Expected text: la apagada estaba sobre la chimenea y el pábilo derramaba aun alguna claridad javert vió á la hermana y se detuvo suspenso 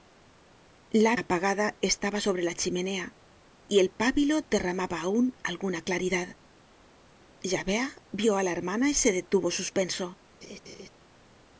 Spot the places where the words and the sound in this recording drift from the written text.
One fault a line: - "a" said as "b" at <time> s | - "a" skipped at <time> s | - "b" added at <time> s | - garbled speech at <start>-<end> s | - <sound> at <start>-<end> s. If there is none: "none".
- laugh at 10.4-10.9 s